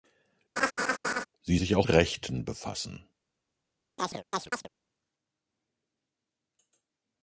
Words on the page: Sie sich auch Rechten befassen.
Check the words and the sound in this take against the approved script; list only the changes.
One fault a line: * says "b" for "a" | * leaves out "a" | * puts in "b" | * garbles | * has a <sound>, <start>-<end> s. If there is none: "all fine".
* has a laugh, 0.6-1.3 s
* has a chirp, 4.0-4.7 s